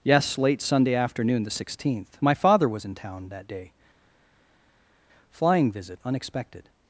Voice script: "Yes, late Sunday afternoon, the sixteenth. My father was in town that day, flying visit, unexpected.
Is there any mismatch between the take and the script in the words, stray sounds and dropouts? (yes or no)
no